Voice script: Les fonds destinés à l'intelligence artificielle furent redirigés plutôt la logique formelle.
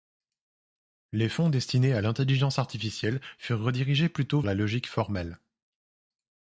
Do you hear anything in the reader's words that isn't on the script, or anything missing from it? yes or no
no